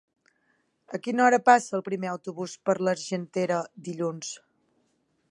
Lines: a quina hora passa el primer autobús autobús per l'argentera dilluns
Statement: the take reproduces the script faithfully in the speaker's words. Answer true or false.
false